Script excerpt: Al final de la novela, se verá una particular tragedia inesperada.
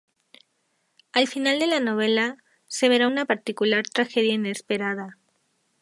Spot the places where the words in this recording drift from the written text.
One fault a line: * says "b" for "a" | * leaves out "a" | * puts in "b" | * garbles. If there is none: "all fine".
all fine